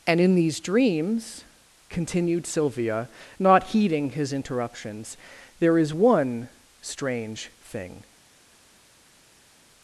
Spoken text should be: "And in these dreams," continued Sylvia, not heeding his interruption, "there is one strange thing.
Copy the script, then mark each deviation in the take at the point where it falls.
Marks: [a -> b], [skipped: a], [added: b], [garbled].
"And in these dreams," continued Sylvia, not heeding his [interruption, -> interruptions] "there is one strange thing.